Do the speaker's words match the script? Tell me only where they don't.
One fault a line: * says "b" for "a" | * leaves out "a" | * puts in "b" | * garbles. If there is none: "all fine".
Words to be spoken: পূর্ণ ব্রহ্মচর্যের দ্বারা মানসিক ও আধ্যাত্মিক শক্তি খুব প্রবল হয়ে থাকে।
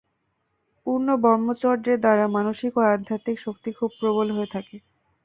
all fine